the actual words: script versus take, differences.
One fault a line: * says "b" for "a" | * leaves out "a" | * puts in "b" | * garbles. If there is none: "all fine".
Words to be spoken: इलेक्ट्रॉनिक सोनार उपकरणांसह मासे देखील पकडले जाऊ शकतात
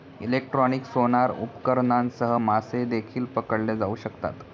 all fine